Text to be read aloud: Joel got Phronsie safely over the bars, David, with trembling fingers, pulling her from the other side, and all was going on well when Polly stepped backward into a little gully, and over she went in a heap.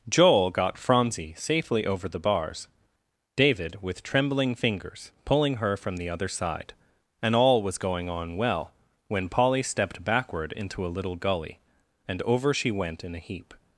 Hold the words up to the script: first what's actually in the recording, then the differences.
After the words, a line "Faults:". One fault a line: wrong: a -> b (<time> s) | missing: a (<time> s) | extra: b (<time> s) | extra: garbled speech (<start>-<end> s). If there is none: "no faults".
Joel got Phronsie safely over the bars, David, with trembling fingers, pulling her from the other side, and all was going on well when Polly stepped backward into a little gully, and over she went in a heap.
Faults:
no faults